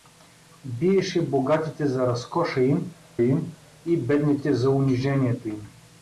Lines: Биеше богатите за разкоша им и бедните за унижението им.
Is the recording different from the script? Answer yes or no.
yes